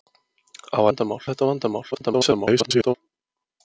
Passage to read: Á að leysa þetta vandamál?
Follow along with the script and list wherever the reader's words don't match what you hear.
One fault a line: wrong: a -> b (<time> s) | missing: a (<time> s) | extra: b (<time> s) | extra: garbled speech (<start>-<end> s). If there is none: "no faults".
wrong: leysa -> vandamál (0.9 s)
extra: garbled speech (1.9-2.9 s)